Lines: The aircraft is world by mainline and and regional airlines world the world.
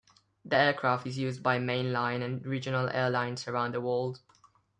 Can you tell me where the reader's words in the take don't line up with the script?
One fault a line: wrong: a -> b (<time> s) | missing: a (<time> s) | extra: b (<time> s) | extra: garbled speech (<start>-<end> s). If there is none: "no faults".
wrong: world -> used (1.2 s)
missing: and (2.4 s)
wrong: world -> around (3.5 s)